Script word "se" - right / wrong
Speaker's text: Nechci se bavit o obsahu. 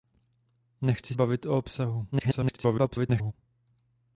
wrong